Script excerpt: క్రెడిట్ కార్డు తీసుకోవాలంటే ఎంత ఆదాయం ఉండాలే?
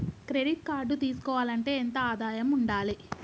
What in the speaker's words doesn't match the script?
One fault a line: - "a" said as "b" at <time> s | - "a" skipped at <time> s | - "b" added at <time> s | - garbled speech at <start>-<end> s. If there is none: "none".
none